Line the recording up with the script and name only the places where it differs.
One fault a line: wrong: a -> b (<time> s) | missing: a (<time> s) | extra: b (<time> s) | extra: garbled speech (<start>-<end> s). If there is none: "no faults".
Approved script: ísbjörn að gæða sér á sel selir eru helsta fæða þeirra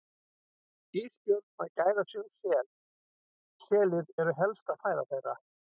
no faults